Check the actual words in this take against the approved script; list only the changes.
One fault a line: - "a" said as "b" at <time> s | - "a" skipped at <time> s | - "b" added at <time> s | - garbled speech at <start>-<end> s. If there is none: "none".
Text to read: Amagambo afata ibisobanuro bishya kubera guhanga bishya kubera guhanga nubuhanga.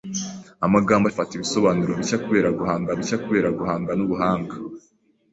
none